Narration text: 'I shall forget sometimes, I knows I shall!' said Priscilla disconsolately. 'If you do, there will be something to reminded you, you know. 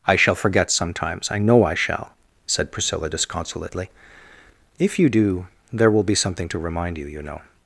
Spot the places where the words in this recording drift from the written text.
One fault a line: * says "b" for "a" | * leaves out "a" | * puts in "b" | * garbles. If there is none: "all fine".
* says "know" for "knows"
* says "remind" for "reminded"